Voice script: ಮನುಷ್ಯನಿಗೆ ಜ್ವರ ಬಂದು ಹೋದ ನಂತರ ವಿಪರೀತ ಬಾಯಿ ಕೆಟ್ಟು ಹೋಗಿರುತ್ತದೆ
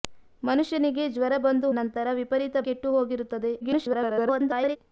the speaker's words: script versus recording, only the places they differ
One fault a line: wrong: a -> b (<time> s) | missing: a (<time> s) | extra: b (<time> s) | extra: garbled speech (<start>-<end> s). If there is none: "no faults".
missing: ಹೋದ (1.7 s)
missing: ಬಾಯಿ (2.6 s)
extra: garbled speech (3.6-4.8 s)